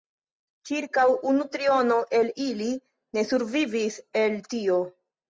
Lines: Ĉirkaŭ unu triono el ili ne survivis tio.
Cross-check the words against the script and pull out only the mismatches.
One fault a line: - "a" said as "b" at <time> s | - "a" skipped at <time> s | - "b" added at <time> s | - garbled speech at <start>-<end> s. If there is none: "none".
- "el" added at 4.2 s